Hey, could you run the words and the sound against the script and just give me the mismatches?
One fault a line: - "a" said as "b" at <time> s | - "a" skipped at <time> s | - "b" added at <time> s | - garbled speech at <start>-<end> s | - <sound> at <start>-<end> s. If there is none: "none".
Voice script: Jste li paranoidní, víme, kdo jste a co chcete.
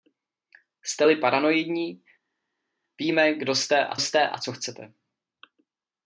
- "jste a" added at 4.0 s